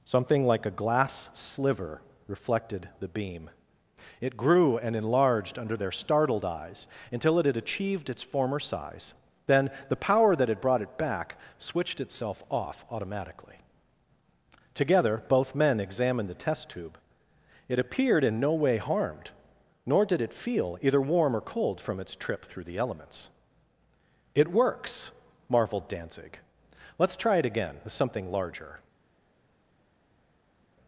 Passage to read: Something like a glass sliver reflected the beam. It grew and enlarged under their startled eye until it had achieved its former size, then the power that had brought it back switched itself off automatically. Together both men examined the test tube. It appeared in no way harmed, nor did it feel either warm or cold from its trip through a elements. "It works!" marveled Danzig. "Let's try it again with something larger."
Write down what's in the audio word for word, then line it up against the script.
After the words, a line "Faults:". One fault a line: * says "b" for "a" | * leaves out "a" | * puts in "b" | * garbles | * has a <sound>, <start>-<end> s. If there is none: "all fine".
Something like a glass sliver reflected the beam. It grew and enlarged under their startled eyes until it had achieved its former size, then the power that had brought it back switched itself off automatically. Together both men examined the test tube. It appeared in no way harmed, nor did it feel either warm or cold from its trip through the elements. "It works!" marveled Danzig. "Let's try it again with something larger."
Faults:
* says "eyes" for "eye"
* says "the" for "a"